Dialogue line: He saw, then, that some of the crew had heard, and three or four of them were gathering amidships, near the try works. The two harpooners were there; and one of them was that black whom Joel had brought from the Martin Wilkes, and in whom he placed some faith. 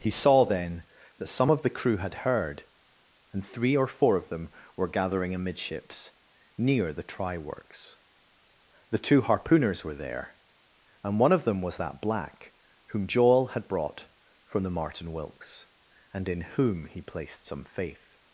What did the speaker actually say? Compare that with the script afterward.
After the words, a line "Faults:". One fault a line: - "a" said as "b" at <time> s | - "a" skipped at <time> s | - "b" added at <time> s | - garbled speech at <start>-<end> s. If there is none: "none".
He saw, then, that some of the crew had heard, and three or four of them were gathering amidships, near the try works. The two harpooners were there; and one of them was that black whom Joel had brought from the Martin Wilkes, and in whom he placed some faith.
Faults:
none